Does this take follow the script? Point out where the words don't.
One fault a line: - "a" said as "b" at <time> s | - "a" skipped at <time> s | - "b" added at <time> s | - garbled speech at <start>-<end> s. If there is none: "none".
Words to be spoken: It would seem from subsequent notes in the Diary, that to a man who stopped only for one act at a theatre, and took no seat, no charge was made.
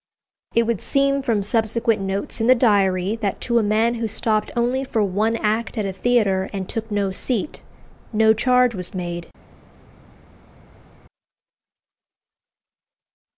none